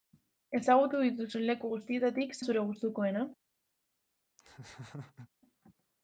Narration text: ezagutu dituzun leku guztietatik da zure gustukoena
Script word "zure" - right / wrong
right